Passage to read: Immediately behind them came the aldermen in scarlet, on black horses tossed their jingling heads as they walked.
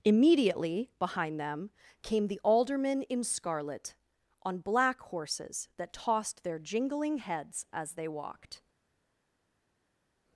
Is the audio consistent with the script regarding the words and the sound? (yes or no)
no